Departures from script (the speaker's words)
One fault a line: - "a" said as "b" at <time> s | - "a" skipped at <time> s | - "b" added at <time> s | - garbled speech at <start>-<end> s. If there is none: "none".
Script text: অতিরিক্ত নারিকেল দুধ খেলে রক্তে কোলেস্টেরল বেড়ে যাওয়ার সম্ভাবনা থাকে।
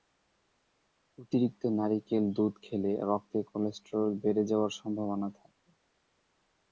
none